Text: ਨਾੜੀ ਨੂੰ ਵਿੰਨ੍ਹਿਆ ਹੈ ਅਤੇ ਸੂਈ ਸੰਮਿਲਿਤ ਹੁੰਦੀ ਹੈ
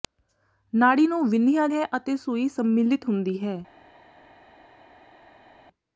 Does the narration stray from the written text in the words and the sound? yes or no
no